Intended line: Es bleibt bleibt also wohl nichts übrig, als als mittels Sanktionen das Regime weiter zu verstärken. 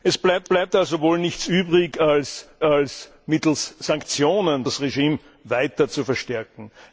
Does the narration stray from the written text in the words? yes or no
no